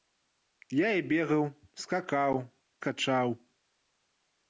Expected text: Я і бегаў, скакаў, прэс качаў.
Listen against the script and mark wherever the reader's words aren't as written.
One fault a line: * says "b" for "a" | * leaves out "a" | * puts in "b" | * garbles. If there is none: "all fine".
* leaves out "прэс"